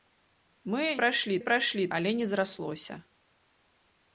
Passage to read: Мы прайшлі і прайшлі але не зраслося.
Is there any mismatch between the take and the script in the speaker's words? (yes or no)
no